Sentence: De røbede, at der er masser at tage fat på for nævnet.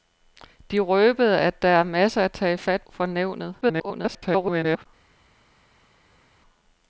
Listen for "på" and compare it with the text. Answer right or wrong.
wrong